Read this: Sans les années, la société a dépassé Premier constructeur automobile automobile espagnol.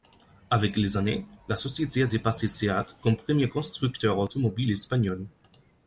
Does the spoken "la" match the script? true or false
true